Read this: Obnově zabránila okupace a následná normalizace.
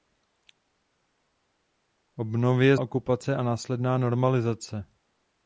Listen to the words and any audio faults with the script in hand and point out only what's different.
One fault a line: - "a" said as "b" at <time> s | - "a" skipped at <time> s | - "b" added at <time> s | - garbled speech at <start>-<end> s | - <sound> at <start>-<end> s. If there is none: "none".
- "zabránila" skipped at 2.8 s